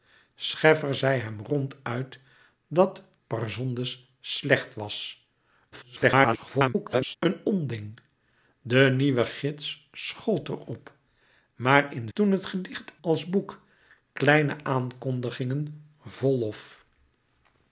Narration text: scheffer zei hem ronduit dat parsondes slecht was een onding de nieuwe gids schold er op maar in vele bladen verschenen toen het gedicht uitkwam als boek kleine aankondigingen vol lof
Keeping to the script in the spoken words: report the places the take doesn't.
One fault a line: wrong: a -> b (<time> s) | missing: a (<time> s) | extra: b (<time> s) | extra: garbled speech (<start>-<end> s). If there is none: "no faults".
extra: garbled speech (5.7-7.2 s)
missing: vele bladen verschenen (12.1 s)
missing: uitkwam (13.0 s)